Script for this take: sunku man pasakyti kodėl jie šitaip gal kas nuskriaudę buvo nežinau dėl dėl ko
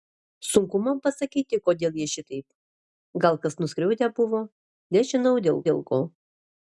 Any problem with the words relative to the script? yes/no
no